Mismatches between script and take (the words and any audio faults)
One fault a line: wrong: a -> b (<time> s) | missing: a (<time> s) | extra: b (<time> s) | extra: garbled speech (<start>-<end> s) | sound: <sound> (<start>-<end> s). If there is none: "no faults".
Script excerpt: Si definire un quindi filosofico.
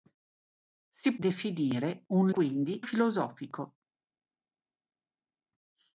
no faults